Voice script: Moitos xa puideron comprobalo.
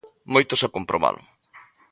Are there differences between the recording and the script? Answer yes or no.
yes